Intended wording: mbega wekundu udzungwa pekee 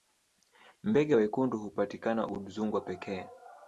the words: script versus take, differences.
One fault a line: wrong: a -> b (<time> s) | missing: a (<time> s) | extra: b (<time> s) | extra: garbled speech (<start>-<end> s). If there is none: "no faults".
extra: hupatikana (1.6 s)